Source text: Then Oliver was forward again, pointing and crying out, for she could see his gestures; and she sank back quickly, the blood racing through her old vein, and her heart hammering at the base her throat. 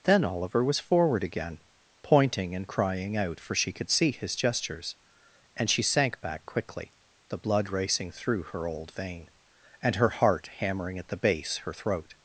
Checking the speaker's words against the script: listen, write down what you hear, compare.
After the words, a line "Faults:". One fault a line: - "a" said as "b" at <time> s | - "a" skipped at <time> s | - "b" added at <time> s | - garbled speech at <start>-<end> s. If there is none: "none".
Then Oliver was forward again, pointing and crying out, for she could see his gestures; and she sank back quickly, the blood racing through her old vein, and her heart hammering at the base her throat.
Faults:
none